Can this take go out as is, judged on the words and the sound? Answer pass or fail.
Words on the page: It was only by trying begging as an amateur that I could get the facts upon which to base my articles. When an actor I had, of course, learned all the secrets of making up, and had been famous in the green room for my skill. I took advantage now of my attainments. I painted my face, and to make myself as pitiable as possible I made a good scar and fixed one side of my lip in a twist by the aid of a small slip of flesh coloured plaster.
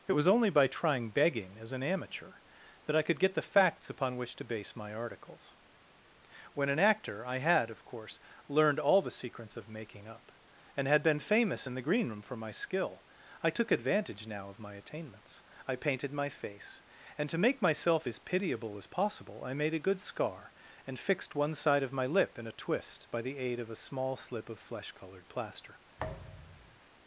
fail